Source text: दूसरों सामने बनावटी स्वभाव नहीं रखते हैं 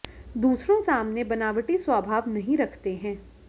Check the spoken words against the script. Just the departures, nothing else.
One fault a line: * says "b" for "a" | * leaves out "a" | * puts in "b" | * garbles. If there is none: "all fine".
all fine